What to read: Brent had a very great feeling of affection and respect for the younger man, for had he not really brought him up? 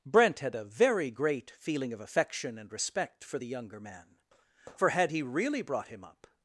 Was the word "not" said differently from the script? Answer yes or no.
yes